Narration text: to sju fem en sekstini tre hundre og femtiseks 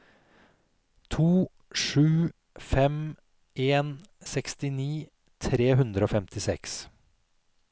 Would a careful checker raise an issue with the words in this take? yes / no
no